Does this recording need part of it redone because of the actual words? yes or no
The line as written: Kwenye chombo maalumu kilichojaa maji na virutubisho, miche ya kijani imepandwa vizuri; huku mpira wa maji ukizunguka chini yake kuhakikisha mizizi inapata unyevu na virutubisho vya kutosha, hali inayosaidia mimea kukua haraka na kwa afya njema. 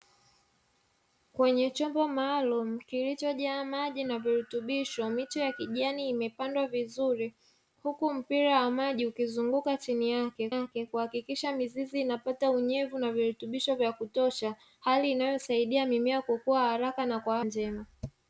yes